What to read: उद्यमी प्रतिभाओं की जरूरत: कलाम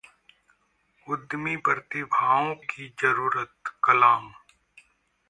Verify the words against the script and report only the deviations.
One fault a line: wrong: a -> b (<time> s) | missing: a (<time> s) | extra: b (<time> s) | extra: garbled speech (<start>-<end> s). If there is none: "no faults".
no faults